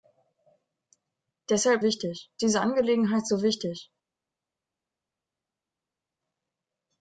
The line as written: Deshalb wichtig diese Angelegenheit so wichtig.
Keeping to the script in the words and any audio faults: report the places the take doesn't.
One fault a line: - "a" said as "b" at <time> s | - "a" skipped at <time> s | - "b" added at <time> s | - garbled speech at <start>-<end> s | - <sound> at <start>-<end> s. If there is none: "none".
none